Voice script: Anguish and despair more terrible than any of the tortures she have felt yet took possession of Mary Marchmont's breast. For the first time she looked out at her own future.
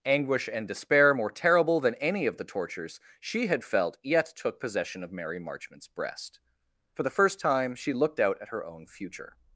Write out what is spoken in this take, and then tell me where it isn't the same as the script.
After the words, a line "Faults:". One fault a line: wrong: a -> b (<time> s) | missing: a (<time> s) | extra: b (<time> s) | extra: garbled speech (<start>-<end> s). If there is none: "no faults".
Anguish and despair more terrible than any of the tortures she had felt yet took possession of Mary Marchmont's breast. For the first time she looked out at her own future.
Faults:
wrong: have -> had (3.5 s)